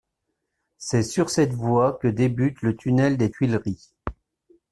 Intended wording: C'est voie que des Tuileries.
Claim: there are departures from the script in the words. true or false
true